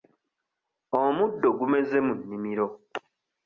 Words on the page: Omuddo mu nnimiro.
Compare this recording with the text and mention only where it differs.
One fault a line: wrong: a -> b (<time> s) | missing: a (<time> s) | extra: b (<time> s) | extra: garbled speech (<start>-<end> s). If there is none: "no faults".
extra: gumeze (1.6 s)